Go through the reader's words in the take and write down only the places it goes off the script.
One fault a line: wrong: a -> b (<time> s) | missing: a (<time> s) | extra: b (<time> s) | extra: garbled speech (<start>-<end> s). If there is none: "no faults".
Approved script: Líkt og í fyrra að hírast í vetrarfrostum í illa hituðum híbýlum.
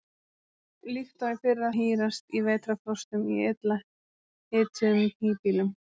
no faults